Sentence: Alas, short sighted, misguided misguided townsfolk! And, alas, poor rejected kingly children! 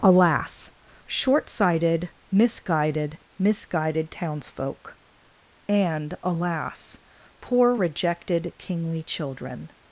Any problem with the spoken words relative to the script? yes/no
no